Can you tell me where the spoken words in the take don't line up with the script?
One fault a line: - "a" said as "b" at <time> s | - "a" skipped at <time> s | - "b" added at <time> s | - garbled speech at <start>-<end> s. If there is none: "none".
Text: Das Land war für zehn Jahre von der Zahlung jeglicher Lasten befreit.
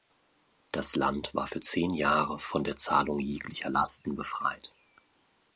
none